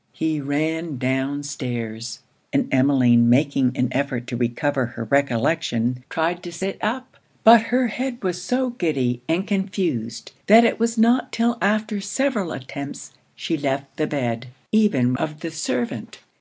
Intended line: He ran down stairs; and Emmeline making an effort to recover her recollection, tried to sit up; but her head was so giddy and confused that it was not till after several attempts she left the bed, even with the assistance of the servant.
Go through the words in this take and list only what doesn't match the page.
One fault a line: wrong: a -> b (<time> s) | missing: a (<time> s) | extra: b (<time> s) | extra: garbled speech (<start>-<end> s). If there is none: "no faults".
missing: with the assistance (15.1 s)